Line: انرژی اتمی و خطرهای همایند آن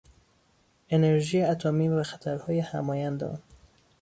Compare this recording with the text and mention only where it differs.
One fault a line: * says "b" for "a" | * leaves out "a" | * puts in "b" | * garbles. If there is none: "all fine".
all fine